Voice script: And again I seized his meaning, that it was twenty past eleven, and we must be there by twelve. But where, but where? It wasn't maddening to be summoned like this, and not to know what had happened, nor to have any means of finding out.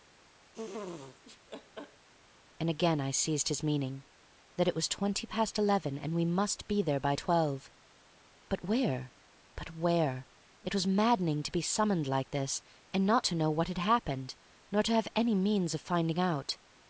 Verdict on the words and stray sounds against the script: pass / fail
fail